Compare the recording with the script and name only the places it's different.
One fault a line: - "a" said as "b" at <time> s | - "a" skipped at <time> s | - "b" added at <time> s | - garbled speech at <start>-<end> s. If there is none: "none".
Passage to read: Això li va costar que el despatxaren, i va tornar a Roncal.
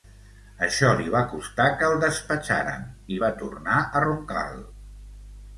none